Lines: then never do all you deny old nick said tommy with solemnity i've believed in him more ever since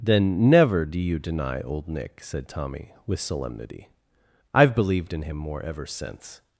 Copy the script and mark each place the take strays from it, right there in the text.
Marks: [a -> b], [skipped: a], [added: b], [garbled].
then never do [skipped: all] you deny old nick said tommy with solemnity i've believed in him more ever since